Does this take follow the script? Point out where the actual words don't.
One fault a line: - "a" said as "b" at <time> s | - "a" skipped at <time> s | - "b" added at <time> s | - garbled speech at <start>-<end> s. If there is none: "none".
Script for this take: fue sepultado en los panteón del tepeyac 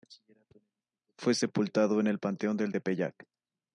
- "los" said as "el" at 2.1 s